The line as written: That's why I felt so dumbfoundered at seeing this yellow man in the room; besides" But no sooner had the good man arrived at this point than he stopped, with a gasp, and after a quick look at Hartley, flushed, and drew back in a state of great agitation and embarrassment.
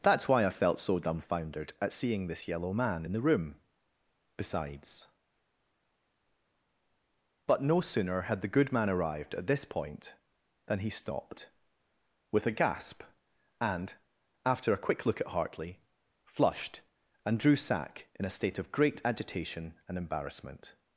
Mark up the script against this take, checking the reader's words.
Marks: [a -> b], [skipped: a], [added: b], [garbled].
That's why I felt so dumbfoundered at seeing this yellow man in the room; besides" But no sooner had the good man arrived at this point than he stopped, with a gasp, and after a quick look at Hartley, flushed, and drew [back -> sack] in a state of great agitation and embarrassment.